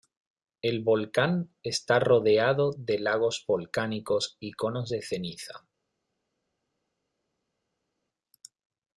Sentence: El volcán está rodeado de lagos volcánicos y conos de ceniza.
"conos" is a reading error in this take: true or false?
false